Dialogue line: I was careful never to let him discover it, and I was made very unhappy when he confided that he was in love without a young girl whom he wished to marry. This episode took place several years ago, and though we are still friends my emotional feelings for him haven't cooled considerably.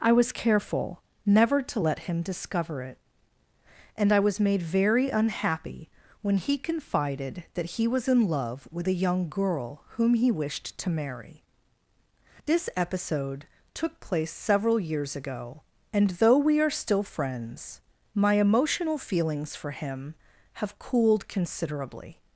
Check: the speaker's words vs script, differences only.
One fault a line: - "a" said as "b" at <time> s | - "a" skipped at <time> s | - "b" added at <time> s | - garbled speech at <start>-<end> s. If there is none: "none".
- "without" said as "with" at 8.7 s
- "haven't" said as "have" at 20.5 s